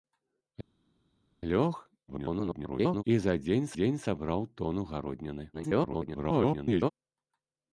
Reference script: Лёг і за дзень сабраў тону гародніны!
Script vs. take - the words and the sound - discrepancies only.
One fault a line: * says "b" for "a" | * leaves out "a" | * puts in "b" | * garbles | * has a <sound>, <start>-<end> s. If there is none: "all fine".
* garbles
* puts in "дзень"
* garbles